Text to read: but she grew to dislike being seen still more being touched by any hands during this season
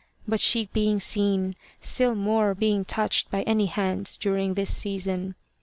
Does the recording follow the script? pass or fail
fail